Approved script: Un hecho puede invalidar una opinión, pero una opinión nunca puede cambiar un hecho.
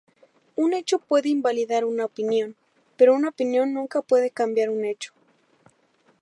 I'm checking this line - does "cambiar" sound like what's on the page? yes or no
yes